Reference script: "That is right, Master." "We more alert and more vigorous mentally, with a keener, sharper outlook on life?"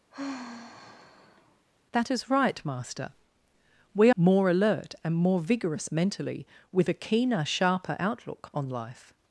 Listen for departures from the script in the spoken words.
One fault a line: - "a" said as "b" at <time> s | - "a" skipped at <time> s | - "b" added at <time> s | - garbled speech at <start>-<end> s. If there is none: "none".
none